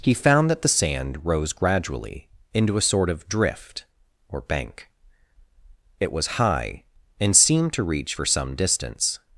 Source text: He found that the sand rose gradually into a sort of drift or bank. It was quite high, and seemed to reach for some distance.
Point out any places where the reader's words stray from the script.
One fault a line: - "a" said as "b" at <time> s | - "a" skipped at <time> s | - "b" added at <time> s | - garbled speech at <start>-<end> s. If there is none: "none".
- "quite" skipped at 6.4 s